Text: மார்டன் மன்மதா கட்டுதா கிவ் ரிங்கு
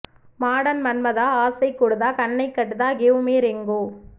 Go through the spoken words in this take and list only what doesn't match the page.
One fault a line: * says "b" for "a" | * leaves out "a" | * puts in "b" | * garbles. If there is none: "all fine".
* puts in "ஆசை கூடுதா கண்ணை"
* puts in "மீ"